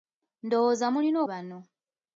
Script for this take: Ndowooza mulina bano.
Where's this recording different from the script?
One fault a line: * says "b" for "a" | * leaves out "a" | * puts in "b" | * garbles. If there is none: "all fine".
all fine